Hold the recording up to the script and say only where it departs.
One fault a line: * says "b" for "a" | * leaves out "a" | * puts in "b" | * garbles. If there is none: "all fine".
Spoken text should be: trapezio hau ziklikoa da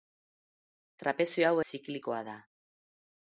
all fine